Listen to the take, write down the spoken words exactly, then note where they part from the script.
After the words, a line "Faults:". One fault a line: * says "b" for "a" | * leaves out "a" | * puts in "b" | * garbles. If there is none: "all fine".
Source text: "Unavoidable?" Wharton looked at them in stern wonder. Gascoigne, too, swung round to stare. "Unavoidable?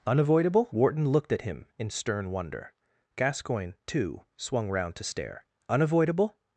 "Unavoidable?" Wharton looked at him in stern wonder. Gascoigne, too, swung round to stare. "Unavoidable?
Faults:
* says "him" for "them"